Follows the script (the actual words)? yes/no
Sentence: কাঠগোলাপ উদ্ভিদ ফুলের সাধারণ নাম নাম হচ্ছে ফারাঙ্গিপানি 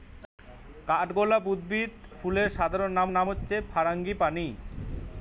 yes